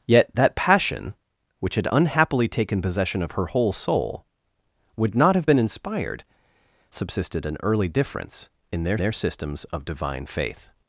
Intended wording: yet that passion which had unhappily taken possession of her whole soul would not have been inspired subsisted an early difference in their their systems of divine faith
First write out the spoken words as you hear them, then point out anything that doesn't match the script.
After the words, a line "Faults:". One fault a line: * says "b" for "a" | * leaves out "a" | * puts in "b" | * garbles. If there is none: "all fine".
yet that passion which had unhappily taken possession of her whole soul would not have been inspired subsisted an early difference in their their systems of divine faith
Faults:
all fine